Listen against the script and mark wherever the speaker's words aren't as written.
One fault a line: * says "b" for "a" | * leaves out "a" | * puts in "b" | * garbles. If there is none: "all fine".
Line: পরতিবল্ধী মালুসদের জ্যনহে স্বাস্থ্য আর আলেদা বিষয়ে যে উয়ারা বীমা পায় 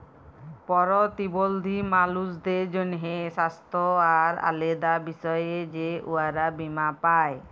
all fine